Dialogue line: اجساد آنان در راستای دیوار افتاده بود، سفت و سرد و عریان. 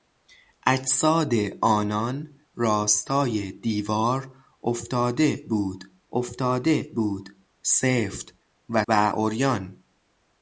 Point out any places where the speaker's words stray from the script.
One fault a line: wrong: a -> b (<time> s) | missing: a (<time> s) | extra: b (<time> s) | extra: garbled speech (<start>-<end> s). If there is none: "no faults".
missing: در (2.4 s)
extra: افتاده بود (6.1 s)
missing: سرد (8.8 s)